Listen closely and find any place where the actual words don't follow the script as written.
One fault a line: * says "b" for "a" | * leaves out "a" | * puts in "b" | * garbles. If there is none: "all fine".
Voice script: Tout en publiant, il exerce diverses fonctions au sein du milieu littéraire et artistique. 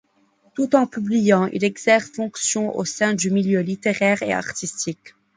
* leaves out "diverses"